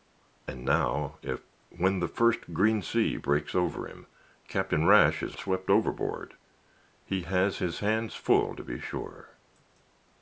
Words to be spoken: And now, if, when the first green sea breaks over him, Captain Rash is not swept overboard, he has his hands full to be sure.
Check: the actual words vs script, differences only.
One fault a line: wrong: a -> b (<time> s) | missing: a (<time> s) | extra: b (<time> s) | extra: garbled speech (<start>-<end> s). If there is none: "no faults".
missing: not (5.3 s)